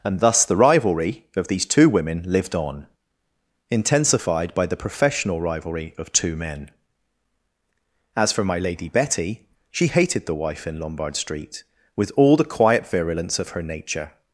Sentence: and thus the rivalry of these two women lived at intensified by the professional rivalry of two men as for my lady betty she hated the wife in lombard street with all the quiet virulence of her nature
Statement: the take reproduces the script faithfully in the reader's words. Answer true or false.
false